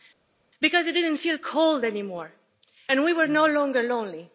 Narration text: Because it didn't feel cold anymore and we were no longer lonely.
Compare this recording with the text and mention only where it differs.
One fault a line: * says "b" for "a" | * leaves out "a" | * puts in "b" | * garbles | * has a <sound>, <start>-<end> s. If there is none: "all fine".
all fine